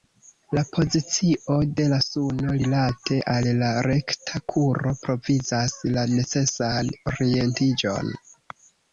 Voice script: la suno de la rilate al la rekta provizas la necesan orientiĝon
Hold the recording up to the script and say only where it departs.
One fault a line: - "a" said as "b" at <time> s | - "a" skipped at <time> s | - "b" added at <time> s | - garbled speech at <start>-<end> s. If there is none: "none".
- "suno" said as "pozicio" at 0.8 s
- "suno" added at 2.0 s
- "kuro" added at 4.5 s